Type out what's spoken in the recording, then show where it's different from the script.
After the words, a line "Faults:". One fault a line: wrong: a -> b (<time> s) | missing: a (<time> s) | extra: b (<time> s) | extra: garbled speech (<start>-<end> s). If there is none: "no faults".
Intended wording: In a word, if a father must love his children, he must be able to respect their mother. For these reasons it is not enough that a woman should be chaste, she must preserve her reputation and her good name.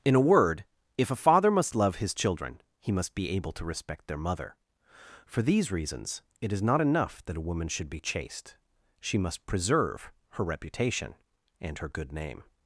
In a word, if a father must love his children, he must be able to respect their mother. For these reasons it is not enough that a woman should be chaste, she must preserve her reputation and her good name.
Faults:
no faults